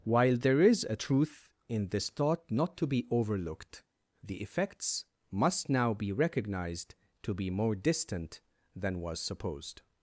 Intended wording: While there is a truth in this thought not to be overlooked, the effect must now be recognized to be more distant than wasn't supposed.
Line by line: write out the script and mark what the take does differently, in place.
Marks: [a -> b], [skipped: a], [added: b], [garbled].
While there is a truth in this thought not to be overlooked, the [effect -> effects] must now be recognized to be more distant than [wasn't -> was] supposed.